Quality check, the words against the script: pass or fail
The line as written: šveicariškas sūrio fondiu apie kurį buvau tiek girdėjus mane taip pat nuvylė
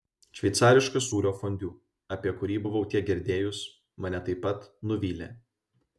pass